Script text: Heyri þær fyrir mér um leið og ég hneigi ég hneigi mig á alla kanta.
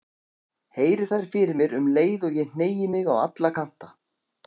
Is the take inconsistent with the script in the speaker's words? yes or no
yes